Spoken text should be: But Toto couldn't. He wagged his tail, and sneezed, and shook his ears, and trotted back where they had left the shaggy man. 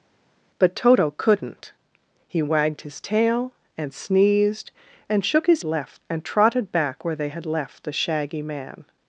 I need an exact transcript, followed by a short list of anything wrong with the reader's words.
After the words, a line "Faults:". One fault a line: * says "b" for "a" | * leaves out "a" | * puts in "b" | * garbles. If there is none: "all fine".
But Toto couldn't. He wagged his tail, and sneezed, and shook his left, and trotted back where they had left the shaggy man.
Faults:
* says "left" for "ears"